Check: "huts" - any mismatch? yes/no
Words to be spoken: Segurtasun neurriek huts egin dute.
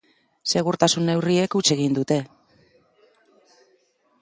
no